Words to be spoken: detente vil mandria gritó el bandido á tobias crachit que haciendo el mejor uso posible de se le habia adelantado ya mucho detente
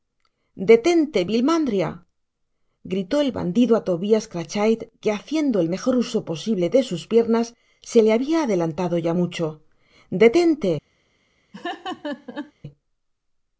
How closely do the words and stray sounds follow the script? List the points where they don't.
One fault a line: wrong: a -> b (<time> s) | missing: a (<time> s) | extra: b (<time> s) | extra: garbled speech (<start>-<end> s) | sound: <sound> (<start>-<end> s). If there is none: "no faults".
extra: sus piernas (6.9 s)
sound: laugh (11.5-12.5 s)